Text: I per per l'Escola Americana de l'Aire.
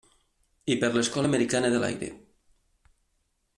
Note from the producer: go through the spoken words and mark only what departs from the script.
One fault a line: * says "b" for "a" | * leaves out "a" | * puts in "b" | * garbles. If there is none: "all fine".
* leaves out "per"